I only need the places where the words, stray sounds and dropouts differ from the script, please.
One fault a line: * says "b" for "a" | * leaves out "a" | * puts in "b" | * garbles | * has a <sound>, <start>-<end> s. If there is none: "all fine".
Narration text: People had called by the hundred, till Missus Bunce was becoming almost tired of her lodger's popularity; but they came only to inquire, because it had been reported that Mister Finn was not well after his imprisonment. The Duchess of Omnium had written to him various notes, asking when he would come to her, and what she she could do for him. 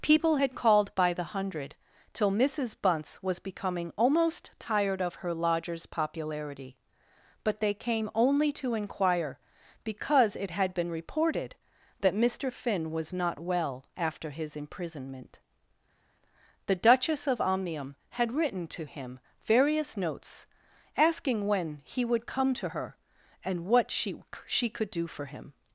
all fine